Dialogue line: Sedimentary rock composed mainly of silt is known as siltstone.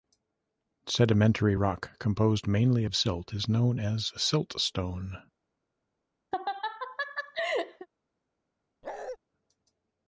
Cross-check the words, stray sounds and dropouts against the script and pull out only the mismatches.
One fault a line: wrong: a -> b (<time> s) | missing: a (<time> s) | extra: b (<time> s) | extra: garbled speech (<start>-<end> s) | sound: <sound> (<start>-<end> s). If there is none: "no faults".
sound: laugh (6.3-7.9 s)
sound: bark (8.8-9.2 s)